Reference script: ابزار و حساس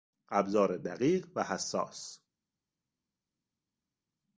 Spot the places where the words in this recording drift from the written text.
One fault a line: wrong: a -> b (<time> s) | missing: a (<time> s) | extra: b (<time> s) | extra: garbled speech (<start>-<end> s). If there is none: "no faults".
extra: دقیق (0.8 s)